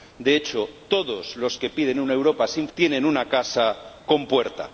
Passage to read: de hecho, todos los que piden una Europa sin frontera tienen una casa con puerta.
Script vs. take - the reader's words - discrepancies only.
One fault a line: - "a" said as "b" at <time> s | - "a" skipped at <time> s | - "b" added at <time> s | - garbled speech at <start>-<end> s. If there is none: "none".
- "frontera" skipped at 2.7 s